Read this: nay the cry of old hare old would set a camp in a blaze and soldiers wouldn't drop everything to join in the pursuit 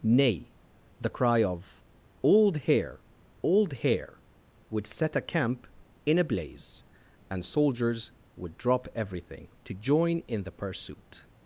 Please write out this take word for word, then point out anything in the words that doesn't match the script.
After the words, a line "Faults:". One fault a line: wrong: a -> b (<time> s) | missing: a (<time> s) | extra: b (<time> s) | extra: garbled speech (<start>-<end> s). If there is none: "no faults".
nay the cry of old hare old hare would set a camp in a blaze and soldiers would drop everything to join in the pursuit
Faults:
extra: hare (3.7 s)
wrong: wouldn't -> would (8.3 s)